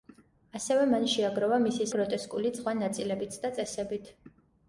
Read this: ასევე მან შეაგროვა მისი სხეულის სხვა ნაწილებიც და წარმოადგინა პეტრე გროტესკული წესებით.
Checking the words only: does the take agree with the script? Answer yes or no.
no